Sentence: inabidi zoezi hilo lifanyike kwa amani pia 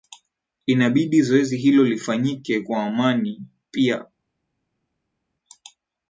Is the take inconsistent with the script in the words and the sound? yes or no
no